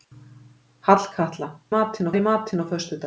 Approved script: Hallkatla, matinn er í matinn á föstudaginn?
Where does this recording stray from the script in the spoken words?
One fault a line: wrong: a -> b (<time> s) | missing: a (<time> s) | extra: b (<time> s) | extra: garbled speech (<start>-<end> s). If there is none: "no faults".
no faults